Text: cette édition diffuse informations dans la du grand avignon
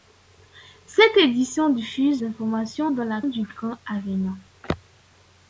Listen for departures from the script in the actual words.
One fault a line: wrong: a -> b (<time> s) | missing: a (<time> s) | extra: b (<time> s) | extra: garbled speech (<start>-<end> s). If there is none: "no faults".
no faults